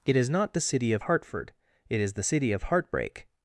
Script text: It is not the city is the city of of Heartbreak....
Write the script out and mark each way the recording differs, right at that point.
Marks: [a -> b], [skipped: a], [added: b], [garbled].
It is not the city [added: of Hartford it] is the city of [skipped: of] Heartbreak....